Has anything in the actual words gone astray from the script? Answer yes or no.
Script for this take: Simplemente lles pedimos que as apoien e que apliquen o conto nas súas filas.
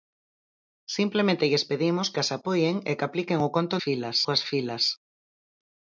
yes